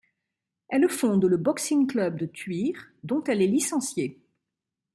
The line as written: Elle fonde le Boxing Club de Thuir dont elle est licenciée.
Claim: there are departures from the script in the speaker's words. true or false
false